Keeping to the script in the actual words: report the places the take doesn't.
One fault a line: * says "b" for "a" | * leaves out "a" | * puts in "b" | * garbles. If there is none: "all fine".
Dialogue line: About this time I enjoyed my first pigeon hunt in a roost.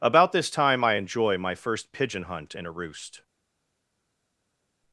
* says "enjoy" for "enjoyed"